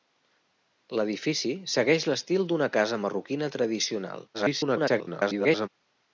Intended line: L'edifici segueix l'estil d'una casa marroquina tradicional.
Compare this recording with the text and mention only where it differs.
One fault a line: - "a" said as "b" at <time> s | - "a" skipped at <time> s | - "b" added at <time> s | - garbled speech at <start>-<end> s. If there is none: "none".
- garbled speech at 4.3-5.7 s